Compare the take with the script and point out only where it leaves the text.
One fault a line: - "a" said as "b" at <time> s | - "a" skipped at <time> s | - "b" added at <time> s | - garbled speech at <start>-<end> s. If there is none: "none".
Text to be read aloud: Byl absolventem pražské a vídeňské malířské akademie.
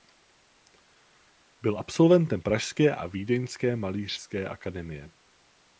none